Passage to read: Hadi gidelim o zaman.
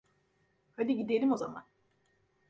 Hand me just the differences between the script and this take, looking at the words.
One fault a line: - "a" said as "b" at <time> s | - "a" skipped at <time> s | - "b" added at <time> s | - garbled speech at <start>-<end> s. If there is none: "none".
none